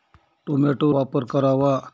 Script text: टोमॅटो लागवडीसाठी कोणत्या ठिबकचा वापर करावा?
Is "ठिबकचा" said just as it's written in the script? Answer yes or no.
no